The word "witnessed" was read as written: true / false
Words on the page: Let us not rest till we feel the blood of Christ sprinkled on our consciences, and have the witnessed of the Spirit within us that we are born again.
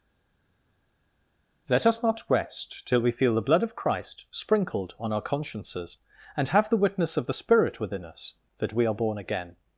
false